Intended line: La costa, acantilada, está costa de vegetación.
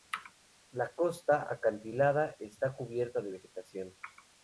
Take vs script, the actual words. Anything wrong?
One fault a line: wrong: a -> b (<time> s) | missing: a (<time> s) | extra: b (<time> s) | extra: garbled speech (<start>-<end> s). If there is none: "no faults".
wrong: costa -> cubierta (2.8 s)